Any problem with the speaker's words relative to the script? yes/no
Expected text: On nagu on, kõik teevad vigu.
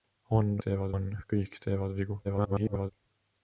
yes